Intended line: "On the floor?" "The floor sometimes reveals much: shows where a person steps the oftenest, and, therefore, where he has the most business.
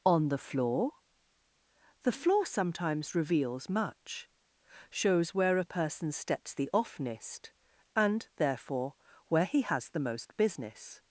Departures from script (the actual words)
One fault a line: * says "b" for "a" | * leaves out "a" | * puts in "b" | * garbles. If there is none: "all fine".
all fine